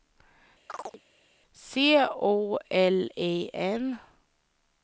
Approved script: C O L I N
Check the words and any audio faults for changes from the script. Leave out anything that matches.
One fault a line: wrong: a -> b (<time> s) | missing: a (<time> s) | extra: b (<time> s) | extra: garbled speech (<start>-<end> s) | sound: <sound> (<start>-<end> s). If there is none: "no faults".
sound: chirp (0.7-1.0 s)